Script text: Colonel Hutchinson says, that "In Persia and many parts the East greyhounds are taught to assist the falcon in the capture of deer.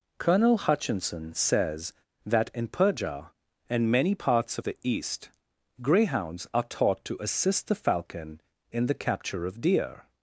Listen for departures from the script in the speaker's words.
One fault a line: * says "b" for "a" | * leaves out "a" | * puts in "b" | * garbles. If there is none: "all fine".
all fine